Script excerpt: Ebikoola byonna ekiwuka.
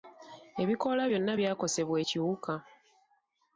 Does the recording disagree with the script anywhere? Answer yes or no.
yes